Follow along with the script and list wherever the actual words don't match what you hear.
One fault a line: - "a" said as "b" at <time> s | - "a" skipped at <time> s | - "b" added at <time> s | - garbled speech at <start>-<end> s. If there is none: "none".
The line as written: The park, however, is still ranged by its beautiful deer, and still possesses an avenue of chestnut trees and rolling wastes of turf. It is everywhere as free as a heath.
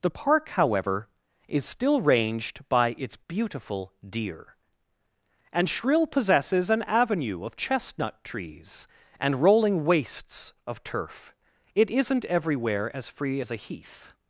- "still" said as "shrill" at 5.7 s
- "is" said as "isn't" at 11.9 s